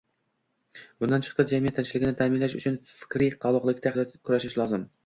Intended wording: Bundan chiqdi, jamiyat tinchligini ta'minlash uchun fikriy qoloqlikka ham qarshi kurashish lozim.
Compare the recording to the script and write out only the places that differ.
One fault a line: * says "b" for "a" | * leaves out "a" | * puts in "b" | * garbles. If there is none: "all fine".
* leaves out "ham qarshi"